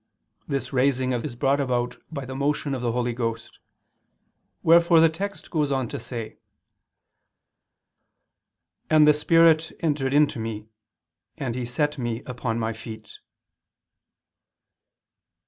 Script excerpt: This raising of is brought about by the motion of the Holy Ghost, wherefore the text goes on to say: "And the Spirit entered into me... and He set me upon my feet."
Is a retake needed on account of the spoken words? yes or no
no